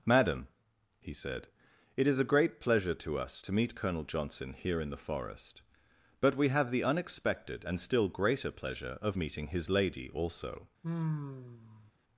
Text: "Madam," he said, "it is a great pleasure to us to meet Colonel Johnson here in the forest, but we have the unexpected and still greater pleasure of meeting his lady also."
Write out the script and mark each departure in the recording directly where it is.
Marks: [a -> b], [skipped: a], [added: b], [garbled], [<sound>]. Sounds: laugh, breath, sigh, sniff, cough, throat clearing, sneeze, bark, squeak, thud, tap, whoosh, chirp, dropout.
"Madam," he said, "it is a great pleasure to us to meet Colonel Johnson here in the forest, but we have the unexpected and still greater pleasure of meeting his lady also." [sigh]